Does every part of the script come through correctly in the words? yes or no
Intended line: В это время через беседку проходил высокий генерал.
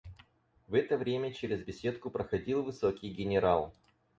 yes